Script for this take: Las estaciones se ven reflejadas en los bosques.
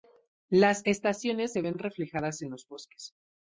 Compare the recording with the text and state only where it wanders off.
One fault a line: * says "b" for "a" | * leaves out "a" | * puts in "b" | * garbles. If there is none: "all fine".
all fine